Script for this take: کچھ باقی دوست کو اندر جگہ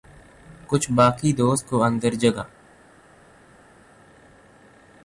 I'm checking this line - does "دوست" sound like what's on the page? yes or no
yes